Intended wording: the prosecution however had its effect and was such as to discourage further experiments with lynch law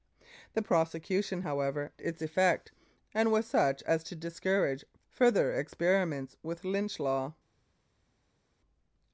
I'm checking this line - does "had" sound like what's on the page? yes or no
no